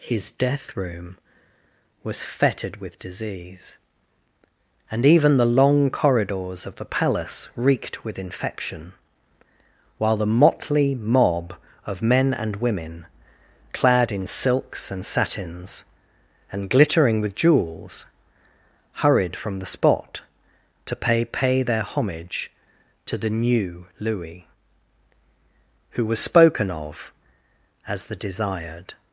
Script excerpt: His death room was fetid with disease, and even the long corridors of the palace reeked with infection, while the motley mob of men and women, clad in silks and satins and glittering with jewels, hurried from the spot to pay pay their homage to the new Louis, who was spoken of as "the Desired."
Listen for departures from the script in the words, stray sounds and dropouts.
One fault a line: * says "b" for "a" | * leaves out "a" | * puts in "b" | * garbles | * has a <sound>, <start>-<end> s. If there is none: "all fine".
all fine